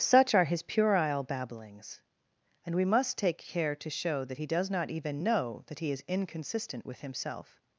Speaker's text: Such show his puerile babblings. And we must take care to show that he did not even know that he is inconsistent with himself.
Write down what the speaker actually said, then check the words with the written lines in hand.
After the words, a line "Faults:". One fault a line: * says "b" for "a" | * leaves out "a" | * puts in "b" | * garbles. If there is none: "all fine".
Such are his puerile babblings. And we must take care to show that he does not even know that he is inconsistent with himself.
Faults:
* says "are" for "show"
* says "does" for "did"